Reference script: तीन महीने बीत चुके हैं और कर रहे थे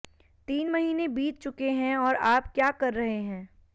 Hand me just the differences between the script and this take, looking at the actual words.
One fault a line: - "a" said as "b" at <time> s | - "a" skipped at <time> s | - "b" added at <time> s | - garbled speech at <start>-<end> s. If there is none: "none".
- "आप क्या" added at 2.1 s
- "थे" said as "हैं" at 3.2 s